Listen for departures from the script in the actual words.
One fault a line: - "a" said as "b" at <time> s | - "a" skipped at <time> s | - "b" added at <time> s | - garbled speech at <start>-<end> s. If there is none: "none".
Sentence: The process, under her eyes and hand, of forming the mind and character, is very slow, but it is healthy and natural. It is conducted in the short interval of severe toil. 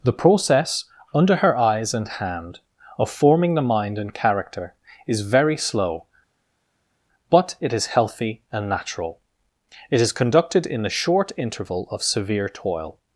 none